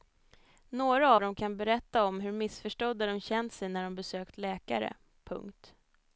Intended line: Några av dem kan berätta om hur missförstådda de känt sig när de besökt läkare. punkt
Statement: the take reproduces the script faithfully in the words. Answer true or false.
false